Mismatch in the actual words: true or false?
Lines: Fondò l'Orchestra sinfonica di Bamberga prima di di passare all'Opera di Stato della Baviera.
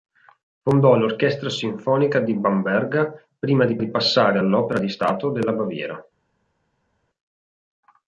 false